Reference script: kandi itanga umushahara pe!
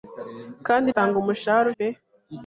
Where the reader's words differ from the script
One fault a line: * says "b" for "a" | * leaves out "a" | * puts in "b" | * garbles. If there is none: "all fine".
all fine